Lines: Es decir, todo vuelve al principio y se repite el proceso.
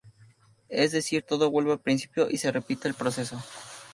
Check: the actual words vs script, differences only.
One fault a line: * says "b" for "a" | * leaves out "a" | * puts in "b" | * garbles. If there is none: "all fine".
all fine